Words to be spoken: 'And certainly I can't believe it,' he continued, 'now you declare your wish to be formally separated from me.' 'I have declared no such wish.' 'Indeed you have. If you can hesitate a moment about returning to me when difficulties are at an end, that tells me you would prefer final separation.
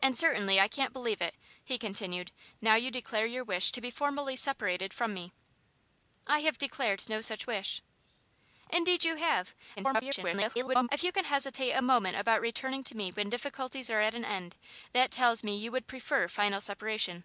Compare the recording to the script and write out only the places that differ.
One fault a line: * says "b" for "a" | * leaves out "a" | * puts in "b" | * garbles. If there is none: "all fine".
* garbles